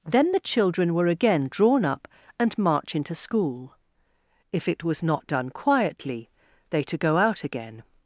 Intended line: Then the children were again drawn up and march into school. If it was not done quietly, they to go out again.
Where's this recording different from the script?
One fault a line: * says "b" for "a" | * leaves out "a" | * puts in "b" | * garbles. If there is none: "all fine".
all fine